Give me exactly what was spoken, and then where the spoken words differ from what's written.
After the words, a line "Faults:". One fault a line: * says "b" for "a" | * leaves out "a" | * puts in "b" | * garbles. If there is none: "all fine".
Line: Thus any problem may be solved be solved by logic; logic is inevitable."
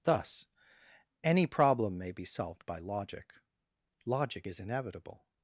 Thus any problem may be solved by logic; logic is inevitable."
Faults:
* leaves out "be solved"